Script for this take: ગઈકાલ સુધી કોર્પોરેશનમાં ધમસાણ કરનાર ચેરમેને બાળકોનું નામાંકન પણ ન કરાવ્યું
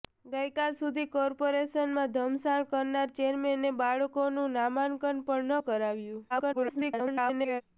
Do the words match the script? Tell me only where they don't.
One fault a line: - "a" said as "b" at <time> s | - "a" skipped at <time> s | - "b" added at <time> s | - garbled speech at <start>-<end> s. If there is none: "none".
- garbled speech at 6.3-7.6 s